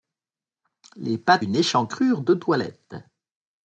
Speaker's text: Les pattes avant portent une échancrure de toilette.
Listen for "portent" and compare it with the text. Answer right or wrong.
wrong